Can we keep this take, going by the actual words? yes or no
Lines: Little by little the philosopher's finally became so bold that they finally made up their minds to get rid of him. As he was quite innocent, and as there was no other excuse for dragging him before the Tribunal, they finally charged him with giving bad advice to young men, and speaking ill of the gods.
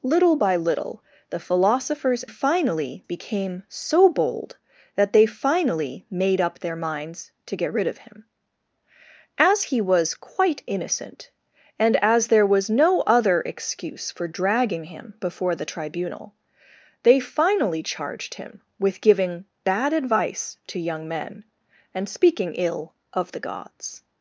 yes